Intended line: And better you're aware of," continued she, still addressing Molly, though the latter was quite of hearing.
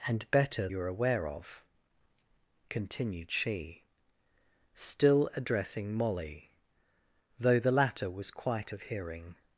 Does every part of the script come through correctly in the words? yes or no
yes